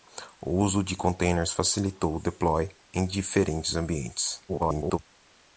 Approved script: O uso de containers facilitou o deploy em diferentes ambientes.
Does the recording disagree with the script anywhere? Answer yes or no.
yes